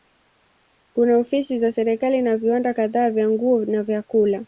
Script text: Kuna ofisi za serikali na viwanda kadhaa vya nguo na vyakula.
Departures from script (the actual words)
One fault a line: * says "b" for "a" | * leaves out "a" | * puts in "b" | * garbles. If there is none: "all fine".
all fine